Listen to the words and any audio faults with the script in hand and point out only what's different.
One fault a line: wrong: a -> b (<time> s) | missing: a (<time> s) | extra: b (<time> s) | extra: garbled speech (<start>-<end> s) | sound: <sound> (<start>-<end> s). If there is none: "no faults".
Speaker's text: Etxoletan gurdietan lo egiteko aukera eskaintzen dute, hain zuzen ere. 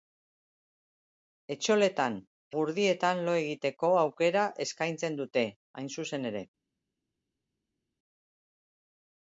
no faults